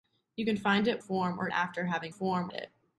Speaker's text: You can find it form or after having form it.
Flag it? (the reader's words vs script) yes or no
no